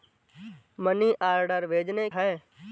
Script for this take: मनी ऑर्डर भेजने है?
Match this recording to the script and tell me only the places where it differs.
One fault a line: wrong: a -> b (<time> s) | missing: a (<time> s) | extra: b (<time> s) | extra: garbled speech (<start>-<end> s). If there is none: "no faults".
no faults